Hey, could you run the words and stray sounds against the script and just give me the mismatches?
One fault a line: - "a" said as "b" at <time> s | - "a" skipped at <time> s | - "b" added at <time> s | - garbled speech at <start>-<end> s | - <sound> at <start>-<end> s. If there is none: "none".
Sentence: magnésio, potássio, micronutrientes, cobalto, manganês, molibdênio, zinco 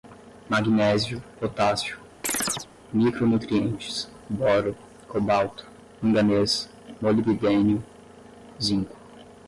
- chirp at 2.2-2.7 s
- "boro" added at 4.3 s